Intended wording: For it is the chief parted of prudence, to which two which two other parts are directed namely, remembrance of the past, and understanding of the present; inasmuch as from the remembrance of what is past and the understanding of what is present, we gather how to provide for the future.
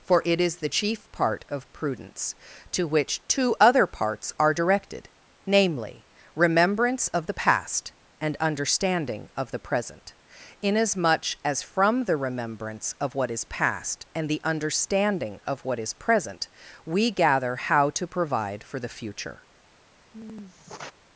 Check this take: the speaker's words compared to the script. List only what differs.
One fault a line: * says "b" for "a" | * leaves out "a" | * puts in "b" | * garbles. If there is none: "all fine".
* says "part" for "parted"
* leaves out "which two"